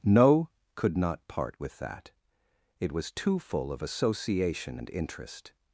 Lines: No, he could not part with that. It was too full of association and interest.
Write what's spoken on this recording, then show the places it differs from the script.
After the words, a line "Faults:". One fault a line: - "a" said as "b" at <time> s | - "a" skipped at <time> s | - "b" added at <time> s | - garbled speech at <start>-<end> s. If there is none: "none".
No, could not part with that. It was too full of association and interest.
Faults:
- "he" skipped at 0.5 s